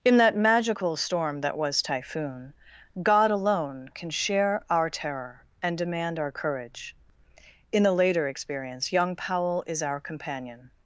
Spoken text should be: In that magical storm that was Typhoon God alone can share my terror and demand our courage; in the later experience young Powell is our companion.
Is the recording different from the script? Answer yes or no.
yes